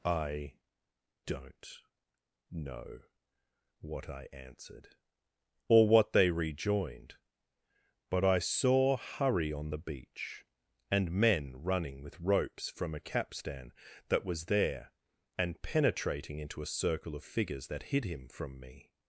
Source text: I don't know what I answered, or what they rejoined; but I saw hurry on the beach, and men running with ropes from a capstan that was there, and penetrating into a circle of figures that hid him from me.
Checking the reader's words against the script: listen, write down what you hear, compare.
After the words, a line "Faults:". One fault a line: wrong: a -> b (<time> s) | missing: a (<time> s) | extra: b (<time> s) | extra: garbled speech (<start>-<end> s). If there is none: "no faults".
I don't know what I answered, or what they rejoined; but I saw hurry on the beach, and men running with ropes from a capstan that was there, and penetrating into a circle of figures that hid him from me.
Faults:
no faults